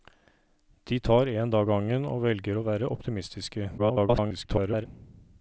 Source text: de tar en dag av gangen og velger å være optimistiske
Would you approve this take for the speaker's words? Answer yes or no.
no